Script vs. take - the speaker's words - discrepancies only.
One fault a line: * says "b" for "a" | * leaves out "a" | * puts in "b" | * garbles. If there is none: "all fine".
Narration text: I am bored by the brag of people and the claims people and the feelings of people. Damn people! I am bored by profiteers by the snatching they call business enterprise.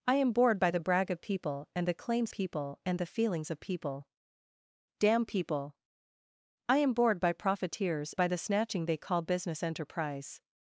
all fine